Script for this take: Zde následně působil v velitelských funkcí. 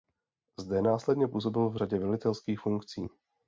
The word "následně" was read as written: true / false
true